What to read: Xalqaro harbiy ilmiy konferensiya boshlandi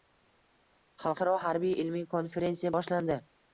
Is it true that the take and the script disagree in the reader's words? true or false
false